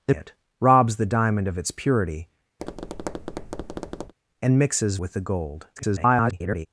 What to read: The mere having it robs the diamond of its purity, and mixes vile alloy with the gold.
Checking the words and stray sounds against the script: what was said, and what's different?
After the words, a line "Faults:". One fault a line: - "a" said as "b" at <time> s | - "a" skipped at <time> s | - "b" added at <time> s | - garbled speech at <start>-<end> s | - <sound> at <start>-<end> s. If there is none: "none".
The it robs the diamond of its purity, and mixes with the gold. [garbled]
Faults:
- "mere having" skipped at 0.1 s
- tap at 2.6-4.1 s
- "vile alloy" skipped at 5.0 s
- garbled speech at 5.8-6.7 s